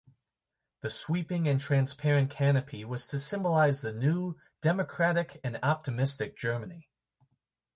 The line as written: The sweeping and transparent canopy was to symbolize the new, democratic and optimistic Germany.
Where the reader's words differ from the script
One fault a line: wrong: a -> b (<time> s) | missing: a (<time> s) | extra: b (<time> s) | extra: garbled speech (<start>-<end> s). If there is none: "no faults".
no faults